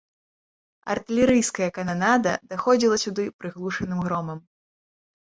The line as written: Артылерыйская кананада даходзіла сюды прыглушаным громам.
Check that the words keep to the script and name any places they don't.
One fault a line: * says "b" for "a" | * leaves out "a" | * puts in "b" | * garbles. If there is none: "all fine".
all fine